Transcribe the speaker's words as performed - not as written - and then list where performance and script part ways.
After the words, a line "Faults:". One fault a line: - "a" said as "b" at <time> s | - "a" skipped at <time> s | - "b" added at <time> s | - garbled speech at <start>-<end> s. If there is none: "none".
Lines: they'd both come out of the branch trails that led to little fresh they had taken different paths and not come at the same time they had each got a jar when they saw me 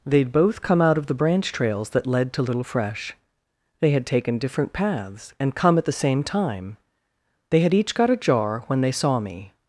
they'd both come out of the branch trails that led to little fresh they had taken different paths and come at the same time they had each got a jar when they saw me
Faults:
- "not" skipped at 5.5 s